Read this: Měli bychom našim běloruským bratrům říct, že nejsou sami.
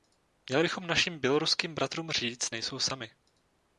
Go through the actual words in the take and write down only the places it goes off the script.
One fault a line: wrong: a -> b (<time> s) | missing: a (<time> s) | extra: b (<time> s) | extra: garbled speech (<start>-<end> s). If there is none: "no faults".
missing: že (2.5 s)